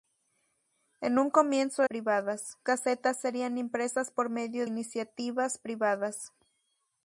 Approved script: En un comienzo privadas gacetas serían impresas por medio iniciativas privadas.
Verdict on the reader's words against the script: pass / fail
pass